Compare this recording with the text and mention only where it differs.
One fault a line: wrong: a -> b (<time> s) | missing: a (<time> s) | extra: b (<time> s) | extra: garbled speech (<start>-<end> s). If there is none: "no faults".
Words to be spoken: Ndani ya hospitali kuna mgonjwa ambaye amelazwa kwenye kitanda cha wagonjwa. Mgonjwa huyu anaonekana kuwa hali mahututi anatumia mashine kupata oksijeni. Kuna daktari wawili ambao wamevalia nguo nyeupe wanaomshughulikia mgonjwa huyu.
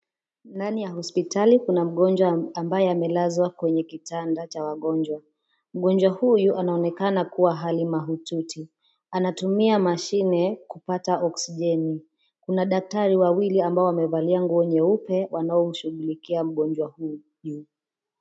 no faults